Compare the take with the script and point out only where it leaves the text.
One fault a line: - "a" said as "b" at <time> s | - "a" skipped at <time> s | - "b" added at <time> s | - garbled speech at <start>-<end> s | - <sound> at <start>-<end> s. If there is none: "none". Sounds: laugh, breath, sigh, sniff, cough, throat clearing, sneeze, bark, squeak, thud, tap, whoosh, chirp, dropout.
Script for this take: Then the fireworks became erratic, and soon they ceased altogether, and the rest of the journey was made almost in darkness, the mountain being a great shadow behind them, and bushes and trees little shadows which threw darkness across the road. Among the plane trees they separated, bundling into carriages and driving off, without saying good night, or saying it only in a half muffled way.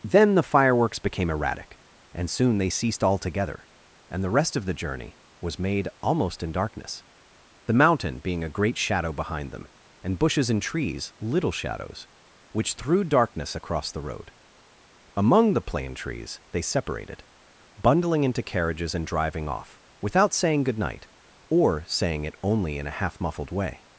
none